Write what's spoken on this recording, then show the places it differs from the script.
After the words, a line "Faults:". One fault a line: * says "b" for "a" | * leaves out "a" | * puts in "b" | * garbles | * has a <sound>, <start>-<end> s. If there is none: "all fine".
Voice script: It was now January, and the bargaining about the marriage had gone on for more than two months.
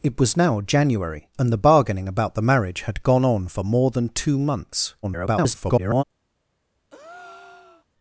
It was now January, and the bargaining about the marriage had gone on for more than two months. [garbled]
Faults:
* garbles
* has a breath, 6.9-7.9 s